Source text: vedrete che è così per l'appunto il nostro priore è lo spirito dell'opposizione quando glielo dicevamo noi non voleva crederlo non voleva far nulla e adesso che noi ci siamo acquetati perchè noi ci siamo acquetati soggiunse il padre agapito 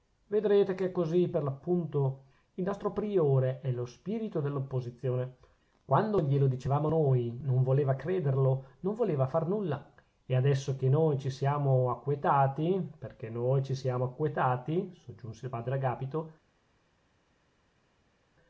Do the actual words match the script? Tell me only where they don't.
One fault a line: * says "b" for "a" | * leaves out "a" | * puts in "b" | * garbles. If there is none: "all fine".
all fine